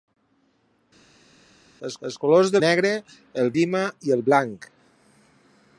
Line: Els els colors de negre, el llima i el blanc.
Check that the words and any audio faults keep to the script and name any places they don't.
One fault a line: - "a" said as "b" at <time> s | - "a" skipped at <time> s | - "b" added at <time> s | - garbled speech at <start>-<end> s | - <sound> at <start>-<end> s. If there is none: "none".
none